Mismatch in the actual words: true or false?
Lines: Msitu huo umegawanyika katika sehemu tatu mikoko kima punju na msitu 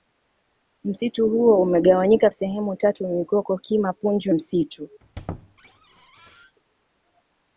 true